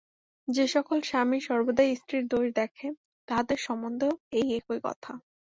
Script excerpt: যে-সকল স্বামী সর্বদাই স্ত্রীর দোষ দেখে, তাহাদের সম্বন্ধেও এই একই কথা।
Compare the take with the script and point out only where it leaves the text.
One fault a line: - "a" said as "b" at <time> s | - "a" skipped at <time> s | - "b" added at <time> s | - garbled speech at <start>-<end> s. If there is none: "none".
none